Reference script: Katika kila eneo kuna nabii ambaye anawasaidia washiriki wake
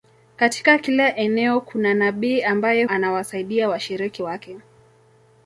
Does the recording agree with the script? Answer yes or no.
yes